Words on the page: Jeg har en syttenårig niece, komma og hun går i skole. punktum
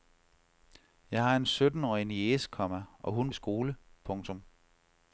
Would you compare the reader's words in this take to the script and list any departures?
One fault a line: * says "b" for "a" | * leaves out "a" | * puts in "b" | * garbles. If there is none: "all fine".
* leaves out "går"